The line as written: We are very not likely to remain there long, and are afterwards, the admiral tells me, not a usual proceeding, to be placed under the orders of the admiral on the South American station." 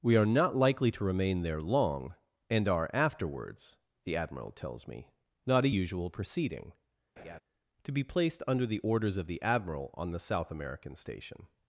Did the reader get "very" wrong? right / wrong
wrong